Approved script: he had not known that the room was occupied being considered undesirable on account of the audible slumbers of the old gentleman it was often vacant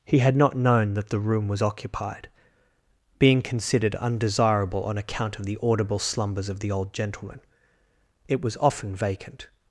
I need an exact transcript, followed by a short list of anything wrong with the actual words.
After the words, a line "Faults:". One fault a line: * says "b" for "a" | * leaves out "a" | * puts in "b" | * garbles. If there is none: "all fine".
he had not known that the room was occupied being considered undesirable on account of the audible slumbers of the old gentleman it was often vacant
Faults:
all fine